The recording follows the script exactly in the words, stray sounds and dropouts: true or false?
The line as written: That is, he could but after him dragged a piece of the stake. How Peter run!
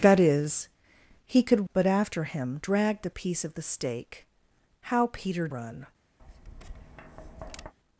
false